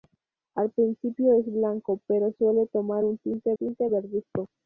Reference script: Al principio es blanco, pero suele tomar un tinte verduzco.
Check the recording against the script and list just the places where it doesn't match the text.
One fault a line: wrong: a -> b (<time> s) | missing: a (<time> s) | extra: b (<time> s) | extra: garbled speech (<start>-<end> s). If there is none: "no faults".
extra: tinte (3.5 s)